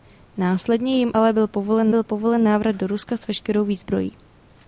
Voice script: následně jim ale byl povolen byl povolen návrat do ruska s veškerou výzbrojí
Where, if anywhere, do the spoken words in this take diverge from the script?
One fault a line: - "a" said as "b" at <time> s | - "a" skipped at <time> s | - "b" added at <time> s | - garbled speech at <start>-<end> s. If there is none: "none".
none